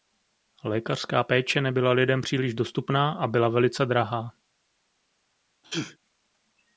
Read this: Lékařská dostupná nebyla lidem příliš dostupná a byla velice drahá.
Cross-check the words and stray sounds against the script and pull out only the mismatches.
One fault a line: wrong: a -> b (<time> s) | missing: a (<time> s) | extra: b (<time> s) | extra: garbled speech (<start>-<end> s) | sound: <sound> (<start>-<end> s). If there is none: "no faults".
wrong: dostupná -> péče (1.2 s)
sound: sneeze (5.6-6.0 s)